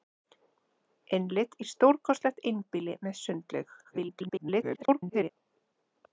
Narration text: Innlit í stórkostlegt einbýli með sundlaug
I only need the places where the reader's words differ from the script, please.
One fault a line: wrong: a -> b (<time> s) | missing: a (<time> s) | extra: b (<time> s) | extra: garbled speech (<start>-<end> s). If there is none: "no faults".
extra: garbled speech (3.8-5.3 s)